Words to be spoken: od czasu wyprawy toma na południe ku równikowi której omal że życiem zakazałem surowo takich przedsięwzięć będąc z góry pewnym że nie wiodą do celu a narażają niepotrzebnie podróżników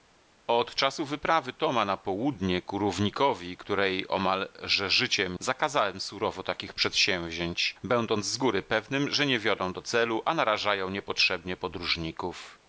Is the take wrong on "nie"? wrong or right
right